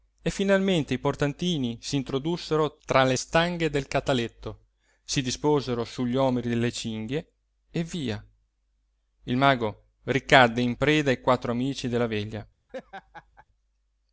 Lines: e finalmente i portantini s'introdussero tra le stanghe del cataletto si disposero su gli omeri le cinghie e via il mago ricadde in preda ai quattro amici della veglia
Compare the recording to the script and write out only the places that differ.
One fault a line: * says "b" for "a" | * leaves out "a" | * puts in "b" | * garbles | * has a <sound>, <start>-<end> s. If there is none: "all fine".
* has a laugh, 12.7-13.5 s